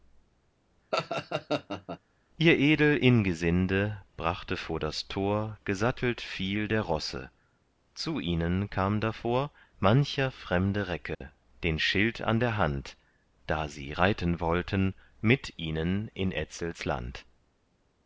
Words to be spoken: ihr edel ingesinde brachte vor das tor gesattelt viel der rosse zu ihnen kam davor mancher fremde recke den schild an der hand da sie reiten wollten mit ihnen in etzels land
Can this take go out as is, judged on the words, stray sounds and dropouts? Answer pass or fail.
fail